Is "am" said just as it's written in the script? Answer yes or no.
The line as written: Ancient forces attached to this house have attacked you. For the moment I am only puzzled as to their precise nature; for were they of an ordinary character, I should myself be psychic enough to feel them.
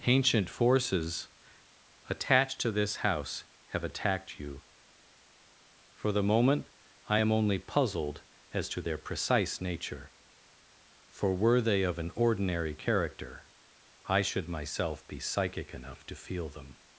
yes